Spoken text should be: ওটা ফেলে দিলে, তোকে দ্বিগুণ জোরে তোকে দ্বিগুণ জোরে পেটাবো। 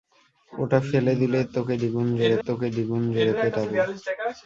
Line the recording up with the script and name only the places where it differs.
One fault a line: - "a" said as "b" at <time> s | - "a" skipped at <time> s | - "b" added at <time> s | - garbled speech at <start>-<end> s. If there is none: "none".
none